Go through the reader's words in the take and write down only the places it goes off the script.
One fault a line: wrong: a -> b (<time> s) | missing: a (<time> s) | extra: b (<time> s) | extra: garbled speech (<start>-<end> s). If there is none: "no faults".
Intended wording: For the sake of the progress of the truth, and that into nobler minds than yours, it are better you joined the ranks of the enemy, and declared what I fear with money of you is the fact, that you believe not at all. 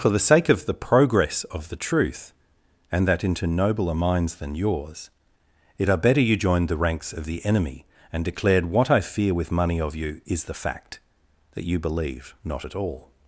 no faults